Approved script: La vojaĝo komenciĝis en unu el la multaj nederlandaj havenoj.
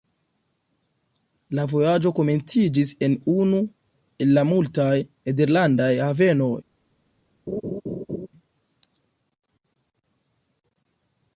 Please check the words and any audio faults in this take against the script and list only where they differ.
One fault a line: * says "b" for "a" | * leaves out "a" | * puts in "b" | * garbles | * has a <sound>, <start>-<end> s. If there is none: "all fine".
* has a laugh, 7.5-8.3 s